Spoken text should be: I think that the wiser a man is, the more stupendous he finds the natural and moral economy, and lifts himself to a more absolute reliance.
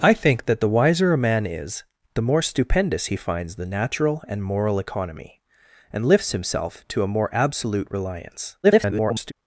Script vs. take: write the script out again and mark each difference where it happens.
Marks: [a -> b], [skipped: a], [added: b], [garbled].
I think that the wiser a man is, the more stupendous he finds the natural and moral economy, and lifts himself to a more absolute reliance. [garbled]